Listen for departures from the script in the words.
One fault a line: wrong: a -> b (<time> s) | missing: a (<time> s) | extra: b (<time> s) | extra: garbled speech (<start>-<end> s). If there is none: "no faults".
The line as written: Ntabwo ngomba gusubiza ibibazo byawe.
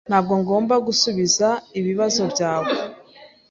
no faults